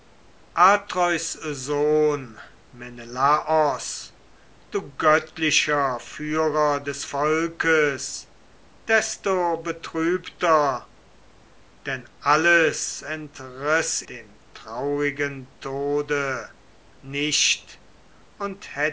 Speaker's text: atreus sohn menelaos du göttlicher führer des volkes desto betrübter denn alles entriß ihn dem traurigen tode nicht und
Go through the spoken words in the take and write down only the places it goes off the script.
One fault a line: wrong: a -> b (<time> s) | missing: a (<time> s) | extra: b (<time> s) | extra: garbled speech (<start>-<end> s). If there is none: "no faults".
missing: ihn (14.0 s)